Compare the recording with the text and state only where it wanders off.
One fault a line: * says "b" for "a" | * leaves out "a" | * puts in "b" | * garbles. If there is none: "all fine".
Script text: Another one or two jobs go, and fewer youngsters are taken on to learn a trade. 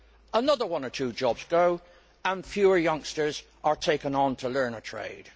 all fine